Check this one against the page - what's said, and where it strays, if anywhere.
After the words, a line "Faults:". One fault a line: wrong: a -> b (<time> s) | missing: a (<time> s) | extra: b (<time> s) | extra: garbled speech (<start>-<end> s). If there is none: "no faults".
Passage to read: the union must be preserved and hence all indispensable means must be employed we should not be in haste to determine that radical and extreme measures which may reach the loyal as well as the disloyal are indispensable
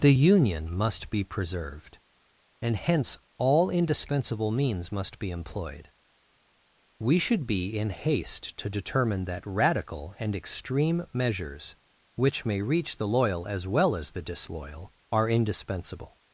the union must be preserved and hence all indispensable means must be employed we should be in haste to determine that radical and extreme measures which may reach the loyal as well as the disloyal are indispensable
Faults:
missing: not (7.5 s)